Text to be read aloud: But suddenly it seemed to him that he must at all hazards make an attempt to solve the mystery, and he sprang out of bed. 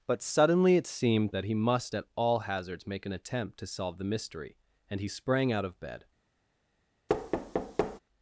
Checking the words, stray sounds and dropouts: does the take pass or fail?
fail